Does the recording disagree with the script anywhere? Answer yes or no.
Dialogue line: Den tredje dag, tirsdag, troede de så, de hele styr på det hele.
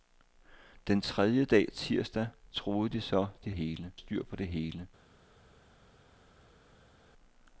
no